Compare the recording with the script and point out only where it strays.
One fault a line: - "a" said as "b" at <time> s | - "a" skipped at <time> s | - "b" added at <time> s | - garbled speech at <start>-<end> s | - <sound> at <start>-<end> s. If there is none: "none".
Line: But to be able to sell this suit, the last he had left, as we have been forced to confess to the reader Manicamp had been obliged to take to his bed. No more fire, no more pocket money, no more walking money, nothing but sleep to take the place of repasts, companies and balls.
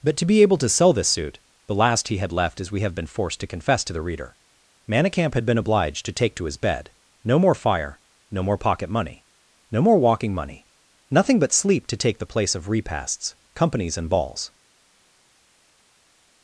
none